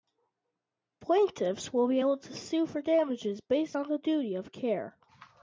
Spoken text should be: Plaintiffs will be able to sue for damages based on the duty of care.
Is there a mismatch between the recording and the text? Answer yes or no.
no